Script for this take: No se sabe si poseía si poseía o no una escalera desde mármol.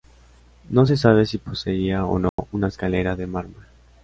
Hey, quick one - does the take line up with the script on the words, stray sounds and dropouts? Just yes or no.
no